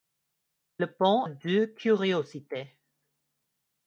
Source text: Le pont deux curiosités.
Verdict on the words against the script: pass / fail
pass